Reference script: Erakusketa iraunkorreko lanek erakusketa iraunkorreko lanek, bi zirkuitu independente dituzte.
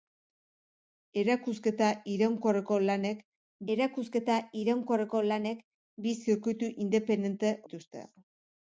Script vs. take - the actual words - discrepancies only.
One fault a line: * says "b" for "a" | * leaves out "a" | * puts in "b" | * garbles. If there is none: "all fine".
all fine